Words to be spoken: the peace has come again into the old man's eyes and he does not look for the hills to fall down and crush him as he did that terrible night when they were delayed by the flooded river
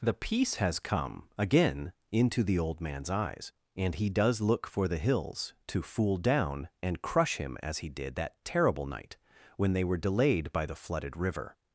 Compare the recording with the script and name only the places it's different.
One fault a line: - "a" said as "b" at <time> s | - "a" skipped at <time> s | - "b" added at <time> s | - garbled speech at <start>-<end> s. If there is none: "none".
- "not" skipped at 4.4 s
- "fall" said as "fool" at 5.8 s